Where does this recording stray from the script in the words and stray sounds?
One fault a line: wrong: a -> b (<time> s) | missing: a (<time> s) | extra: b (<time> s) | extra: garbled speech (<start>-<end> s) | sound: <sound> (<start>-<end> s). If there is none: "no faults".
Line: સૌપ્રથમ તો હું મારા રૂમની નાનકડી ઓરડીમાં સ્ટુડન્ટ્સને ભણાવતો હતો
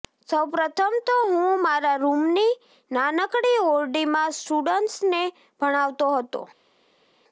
no faults